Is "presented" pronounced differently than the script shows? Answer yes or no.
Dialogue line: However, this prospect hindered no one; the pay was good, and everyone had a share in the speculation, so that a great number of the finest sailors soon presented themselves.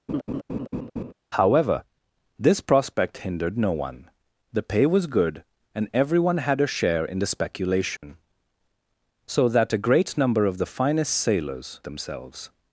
yes